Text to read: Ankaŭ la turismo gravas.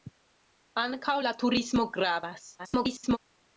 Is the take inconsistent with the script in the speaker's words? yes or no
yes